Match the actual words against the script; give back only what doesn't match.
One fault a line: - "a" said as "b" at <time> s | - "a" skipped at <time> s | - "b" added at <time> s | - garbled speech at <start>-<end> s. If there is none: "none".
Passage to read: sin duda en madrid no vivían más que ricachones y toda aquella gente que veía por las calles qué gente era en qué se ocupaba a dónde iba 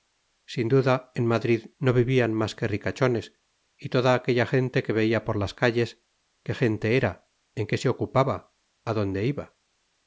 none